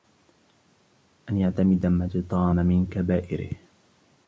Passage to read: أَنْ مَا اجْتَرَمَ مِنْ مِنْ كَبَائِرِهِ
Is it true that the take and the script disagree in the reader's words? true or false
true